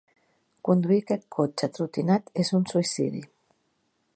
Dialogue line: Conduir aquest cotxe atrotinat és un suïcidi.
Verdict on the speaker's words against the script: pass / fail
pass